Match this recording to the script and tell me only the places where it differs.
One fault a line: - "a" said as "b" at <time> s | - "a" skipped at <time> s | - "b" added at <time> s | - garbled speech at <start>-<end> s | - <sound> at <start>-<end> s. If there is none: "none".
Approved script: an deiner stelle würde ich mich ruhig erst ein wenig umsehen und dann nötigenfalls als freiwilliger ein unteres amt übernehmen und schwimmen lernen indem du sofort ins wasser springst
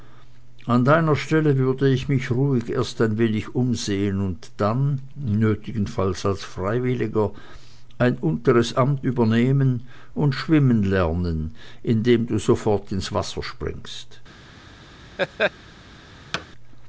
- laugh at 15.2-15.5 s
- thud at 16.3-16.5 s